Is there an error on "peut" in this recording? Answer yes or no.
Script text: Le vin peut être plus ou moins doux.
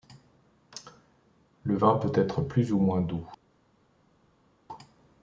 no